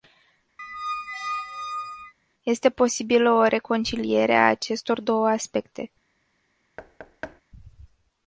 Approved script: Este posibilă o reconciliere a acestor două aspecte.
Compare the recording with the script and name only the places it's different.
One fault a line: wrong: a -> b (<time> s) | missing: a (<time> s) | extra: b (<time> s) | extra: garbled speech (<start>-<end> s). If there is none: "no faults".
no faults